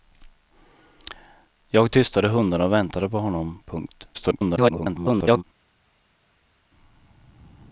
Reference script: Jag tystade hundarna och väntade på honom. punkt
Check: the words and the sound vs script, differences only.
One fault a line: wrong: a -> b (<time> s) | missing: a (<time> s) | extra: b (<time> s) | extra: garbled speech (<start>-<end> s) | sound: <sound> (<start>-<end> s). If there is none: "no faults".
extra: garbled speech (4.1-5.4 s)